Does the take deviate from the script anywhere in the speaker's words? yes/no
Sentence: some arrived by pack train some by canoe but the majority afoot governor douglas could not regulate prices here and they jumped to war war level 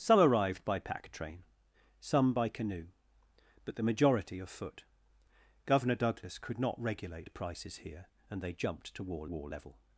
no